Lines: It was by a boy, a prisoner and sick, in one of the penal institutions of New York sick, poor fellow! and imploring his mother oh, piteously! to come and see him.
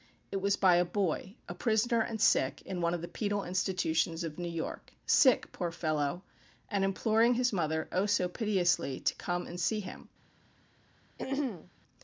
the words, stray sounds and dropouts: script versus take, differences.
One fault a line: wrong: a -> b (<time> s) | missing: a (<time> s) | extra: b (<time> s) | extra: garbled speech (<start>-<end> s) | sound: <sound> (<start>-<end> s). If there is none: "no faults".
extra: so (8.0 s)
sound: throat clearing (11.2-11.7 s)